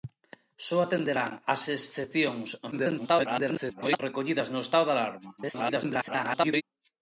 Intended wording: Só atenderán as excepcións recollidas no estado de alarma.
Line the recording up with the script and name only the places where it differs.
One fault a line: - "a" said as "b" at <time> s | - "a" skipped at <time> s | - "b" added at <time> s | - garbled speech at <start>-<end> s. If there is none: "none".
- garbled speech at 2.7-4.0 s
- garbled speech at 5.4-6.6 s